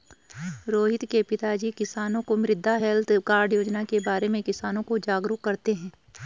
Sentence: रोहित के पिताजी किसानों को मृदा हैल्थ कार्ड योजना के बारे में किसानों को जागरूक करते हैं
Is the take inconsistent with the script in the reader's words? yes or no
no